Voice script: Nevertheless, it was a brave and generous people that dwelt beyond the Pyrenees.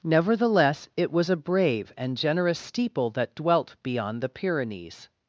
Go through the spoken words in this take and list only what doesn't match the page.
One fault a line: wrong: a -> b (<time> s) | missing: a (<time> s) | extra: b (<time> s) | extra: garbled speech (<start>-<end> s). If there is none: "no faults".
wrong: people -> steeple (2.6 s)